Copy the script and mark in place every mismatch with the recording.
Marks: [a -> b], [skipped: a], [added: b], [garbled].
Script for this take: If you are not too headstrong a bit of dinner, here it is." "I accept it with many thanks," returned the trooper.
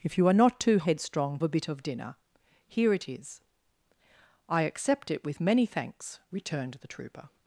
If you are not too headstrong a bit of dinner, here it is." "I accept it with many thanks," returned the trooper.